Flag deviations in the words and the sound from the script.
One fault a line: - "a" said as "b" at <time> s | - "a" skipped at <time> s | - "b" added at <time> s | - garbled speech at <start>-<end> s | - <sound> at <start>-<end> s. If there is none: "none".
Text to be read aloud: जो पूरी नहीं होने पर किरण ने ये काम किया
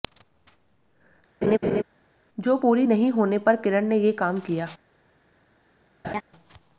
- laugh at 1.4-1.8 s
- laugh at 6.0-6.2 s